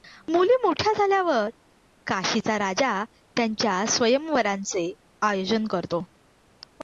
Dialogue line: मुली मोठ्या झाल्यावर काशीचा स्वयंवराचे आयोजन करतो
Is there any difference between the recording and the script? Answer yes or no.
yes